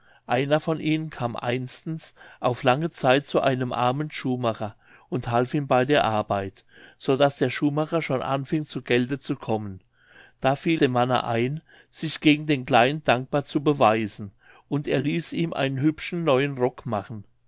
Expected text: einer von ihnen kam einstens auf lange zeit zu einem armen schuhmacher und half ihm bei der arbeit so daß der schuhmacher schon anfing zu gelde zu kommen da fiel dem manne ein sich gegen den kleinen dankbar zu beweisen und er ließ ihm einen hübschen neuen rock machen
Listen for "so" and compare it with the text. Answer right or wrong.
right